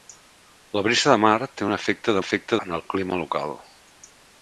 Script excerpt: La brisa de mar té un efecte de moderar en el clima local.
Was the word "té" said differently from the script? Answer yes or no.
no